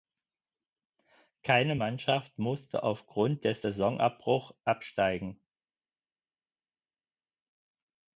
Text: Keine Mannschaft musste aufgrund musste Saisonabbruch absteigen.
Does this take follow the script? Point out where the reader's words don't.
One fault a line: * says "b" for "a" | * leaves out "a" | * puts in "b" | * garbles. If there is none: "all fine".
* says "des" for "musste"